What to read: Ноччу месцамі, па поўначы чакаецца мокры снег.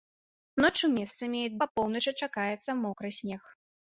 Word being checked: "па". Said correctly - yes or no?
yes